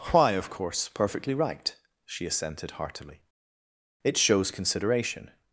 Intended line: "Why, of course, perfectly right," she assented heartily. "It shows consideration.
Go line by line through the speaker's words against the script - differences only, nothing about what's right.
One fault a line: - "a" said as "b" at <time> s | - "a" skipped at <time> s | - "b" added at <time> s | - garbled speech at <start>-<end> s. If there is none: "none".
none